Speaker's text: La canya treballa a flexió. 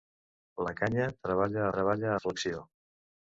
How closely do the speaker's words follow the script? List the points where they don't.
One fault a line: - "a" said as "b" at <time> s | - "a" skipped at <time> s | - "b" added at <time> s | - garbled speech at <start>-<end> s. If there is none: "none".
- "treballa" added at 1.8 s